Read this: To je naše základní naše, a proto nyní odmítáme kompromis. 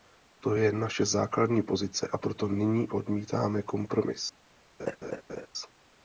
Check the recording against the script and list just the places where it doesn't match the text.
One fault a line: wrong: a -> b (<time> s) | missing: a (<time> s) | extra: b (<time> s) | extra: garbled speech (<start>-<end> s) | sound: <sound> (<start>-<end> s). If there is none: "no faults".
wrong: naše -> pozice (1.6 s)
sound: laugh (4.8-5.5 s)